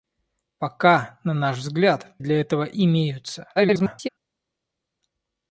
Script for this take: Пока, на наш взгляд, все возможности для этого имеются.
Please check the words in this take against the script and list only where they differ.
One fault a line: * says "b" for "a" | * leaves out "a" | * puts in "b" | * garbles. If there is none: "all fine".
* leaves out "все возможности"
* garbles